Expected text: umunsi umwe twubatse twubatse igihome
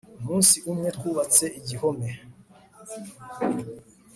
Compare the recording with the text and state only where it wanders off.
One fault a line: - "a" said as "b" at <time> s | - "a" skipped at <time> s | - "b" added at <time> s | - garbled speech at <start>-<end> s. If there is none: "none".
- "twubatse" skipped at 1.4 s